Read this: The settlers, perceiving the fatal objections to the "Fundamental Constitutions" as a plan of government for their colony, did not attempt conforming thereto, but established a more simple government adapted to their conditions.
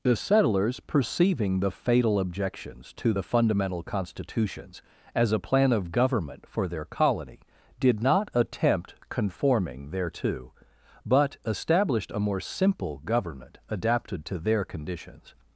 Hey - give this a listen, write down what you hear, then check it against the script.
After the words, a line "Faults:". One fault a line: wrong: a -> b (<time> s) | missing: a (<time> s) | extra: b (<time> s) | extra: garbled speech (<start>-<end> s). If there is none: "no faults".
The settlers, perceiving the fatal objections to the "Fundamental Constitutions" as a plan of government for their colony, did not attempt conforming thereto, but established a more simple government adapted to their conditions.
Faults:
no faults